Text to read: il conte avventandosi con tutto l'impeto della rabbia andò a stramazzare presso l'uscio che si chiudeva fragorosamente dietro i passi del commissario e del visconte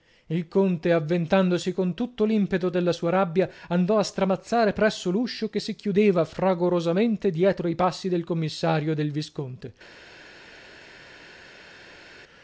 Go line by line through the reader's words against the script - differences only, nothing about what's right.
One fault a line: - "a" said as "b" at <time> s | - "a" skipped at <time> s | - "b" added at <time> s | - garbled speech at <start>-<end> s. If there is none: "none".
- "sua" added at 2.9 s